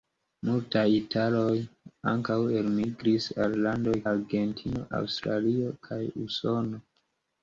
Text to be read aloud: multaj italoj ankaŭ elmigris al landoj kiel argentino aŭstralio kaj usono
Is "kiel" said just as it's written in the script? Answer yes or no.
no